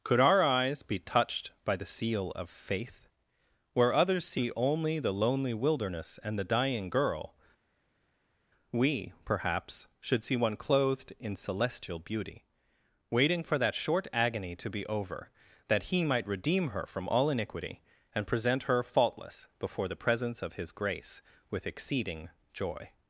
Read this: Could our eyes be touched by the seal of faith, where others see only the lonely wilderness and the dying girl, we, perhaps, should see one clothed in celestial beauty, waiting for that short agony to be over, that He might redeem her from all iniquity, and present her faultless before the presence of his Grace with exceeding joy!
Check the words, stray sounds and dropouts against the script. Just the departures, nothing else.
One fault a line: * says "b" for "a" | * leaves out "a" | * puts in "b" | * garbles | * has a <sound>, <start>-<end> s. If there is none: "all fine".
all fine